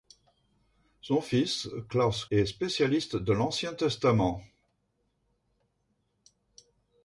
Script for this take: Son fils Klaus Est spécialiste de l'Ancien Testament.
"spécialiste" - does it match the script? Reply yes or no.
yes